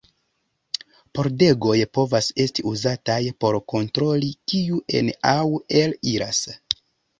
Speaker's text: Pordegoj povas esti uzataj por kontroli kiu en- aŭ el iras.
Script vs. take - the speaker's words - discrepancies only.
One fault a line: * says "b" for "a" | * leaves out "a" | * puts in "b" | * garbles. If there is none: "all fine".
all fine